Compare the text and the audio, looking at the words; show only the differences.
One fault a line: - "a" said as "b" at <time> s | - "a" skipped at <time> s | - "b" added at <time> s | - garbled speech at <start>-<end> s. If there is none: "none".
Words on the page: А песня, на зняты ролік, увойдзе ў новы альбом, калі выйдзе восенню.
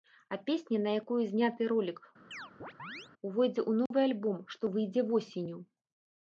- "якую" added at 1.0 s
- "калі" said as "што" at 4.5 s